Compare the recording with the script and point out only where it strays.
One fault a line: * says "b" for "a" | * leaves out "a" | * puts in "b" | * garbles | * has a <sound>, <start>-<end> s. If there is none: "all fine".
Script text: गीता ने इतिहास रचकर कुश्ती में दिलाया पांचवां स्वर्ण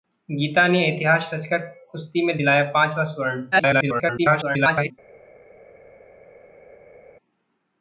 * garbles